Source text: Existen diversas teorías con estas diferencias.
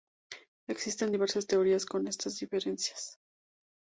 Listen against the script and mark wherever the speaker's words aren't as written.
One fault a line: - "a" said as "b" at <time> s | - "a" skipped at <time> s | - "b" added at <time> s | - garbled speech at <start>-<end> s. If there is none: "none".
none